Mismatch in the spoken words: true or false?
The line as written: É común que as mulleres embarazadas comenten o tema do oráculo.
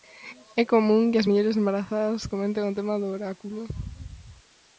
false